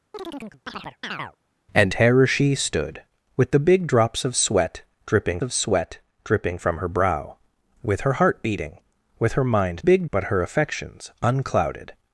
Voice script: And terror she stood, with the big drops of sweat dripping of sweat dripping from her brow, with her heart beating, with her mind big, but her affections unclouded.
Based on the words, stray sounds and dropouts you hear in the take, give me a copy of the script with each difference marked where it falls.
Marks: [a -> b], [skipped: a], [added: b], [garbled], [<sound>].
[chirp] And terror she stood, with the big drops of sweat dripping of sweat dripping from her brow, with her heart beating, with her mind big, but her affections unclouded.